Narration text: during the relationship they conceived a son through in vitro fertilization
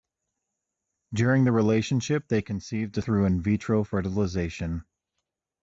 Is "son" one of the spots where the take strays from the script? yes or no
yes